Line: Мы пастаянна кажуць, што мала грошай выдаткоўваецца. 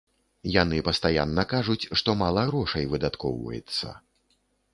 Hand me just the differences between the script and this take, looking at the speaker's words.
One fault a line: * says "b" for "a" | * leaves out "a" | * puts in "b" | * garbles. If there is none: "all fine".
* says "Яны" for "Мы"